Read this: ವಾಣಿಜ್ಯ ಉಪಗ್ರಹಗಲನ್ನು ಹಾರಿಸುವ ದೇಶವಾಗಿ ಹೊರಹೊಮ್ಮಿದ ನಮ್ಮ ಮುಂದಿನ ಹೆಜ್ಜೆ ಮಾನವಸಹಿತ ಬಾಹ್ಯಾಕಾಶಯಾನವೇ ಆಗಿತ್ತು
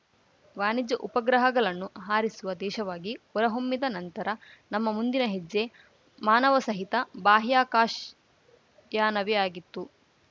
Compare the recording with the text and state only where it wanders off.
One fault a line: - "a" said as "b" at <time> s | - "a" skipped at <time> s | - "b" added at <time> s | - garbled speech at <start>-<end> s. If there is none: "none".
- "ನಂತರ" added at 3.9 s